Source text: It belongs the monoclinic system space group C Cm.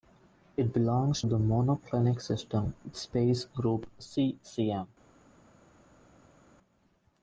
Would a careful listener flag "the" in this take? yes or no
no